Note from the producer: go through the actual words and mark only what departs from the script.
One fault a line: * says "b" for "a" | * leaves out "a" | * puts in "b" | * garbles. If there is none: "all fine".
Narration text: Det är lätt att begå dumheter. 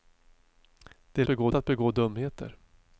* says "begå" for "lätt"